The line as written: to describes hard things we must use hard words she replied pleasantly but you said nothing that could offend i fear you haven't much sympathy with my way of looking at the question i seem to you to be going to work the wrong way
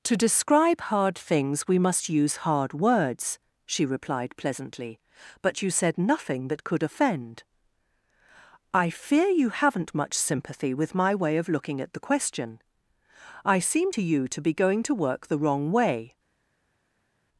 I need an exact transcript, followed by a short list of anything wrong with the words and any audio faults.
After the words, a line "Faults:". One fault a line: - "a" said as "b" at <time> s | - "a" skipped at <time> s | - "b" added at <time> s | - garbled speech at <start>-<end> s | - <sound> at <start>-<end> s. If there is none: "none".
to describe hard things we must use hard words she replied pleasantly but you said nothing that could offend i fear you haven't much sympathy with my way of looking at the question i seem to you to be going to work the wrong way
Faults:
- "describes" said as "describe" at 0.2 s